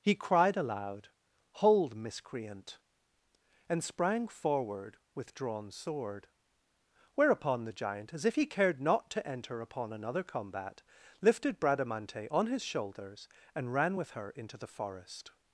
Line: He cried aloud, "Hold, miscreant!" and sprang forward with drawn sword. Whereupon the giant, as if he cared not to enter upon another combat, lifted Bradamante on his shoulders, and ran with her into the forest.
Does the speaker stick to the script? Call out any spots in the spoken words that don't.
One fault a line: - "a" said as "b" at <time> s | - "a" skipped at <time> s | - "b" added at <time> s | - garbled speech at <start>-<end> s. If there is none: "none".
none